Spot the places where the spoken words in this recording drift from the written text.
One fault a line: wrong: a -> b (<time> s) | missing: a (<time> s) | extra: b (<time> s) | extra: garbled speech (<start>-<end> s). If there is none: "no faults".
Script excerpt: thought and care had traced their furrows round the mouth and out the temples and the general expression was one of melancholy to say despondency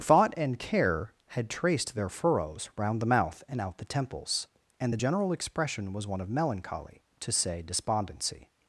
no faults